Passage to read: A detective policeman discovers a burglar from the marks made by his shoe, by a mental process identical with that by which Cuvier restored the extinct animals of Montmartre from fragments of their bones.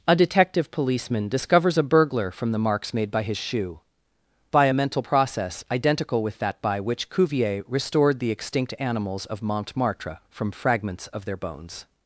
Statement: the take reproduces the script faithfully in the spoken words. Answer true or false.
true